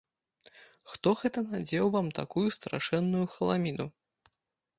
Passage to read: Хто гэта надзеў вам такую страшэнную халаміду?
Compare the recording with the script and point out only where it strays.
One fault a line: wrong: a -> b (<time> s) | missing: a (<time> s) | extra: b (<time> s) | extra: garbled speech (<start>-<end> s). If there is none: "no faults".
no faults